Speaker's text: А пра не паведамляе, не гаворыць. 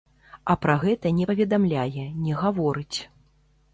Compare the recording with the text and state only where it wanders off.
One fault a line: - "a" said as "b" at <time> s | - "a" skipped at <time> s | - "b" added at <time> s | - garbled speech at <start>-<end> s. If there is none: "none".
- "гэта" added at 0.8 s